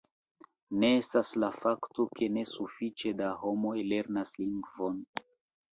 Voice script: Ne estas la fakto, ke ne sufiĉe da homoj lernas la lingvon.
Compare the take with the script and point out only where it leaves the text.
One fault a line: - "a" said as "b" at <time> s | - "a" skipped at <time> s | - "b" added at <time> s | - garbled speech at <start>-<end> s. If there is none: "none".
- "la" skipped at 4.4 s